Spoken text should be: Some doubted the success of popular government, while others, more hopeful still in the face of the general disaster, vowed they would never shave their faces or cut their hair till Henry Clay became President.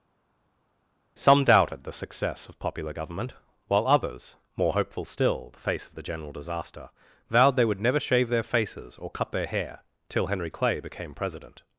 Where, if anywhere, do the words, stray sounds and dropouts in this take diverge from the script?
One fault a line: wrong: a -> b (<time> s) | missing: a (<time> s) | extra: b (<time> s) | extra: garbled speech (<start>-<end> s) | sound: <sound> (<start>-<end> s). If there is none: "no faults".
missing: in (5.5 s)